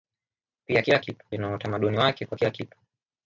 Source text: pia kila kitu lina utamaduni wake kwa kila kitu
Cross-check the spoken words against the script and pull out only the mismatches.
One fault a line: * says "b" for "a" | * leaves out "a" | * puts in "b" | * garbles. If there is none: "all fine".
all fine